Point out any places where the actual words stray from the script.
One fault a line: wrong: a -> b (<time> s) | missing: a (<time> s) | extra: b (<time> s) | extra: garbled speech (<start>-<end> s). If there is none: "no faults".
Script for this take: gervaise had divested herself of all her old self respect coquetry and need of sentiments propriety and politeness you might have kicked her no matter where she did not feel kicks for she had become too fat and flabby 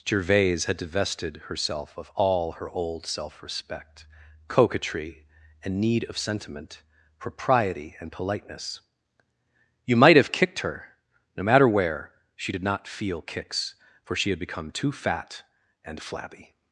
wrong: sentiments -> sentiment (6.2 s)